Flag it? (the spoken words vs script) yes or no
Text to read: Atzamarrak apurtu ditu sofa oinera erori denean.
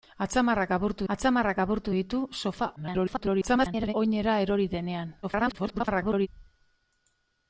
yes